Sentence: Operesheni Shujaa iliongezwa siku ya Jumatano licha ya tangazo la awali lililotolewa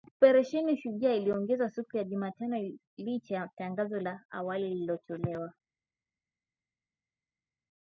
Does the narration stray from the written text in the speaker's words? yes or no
no